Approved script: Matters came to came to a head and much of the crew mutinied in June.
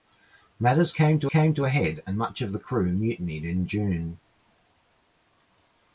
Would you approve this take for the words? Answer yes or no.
yes